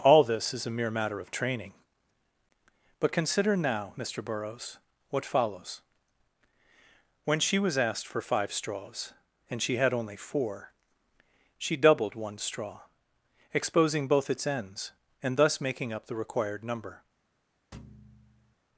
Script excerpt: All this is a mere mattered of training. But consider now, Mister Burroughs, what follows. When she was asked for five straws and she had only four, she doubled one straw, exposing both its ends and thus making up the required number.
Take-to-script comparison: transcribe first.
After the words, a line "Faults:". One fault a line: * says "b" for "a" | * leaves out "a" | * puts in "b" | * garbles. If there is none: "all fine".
All this is a mere matter of training. But consider now, Mister Burroughs, what follows. When she was asked for five straws and she had only four, she doubled one straw, exposing both its ends and thus making up the required number.
Faults:
* says "matter" for "mattered"